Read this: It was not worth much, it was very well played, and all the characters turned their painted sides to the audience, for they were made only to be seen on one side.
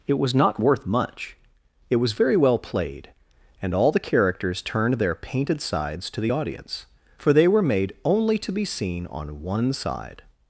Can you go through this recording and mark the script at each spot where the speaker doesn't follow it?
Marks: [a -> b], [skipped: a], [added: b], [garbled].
It was not worth much, it was very well played, and all the characters turned their painted sides to the audience, for they were made only to be seen on one side.